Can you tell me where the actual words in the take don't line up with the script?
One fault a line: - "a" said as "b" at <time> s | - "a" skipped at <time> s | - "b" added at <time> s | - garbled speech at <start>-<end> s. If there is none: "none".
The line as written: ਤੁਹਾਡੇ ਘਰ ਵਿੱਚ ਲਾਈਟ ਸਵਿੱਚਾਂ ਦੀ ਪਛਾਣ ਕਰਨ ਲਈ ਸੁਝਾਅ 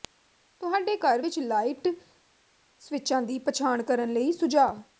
none